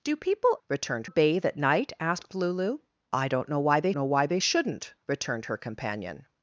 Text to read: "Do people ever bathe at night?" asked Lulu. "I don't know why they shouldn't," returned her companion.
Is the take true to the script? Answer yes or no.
no